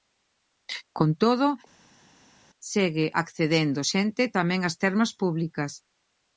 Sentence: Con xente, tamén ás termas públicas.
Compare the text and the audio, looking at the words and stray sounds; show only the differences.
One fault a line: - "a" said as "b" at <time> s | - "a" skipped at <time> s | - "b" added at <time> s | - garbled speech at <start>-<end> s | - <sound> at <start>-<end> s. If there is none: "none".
- "todo segue accedendo" added at 1.2 s